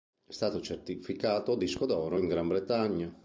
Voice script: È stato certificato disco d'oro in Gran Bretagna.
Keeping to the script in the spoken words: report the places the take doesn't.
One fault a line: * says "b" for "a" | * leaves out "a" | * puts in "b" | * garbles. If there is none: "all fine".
all fine